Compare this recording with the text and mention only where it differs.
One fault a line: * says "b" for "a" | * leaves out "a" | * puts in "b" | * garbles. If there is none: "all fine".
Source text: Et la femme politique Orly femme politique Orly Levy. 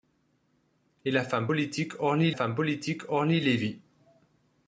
all fine